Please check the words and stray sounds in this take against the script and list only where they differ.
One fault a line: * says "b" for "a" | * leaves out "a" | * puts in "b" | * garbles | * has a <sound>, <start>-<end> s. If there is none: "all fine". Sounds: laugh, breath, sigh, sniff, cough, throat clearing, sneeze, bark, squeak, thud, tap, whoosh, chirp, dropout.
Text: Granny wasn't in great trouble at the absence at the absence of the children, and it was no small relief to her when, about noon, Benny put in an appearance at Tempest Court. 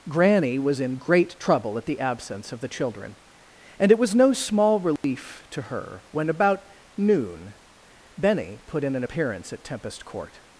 * says "was" for "wasn't"
* leaves out "at the absence"
* has a dropout, 5.0-5.0 s